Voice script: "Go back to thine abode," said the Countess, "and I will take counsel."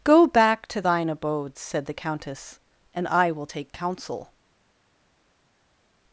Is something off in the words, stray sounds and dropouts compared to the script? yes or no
no